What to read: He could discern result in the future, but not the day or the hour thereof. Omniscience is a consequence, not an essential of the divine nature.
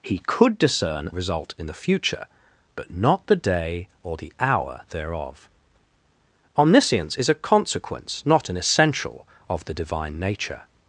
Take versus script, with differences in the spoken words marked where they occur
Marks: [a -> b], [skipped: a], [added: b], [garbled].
He could discern result in the future, but not the day or the hour thereof. Omniscience is a consequence, not an essential of the divine nature.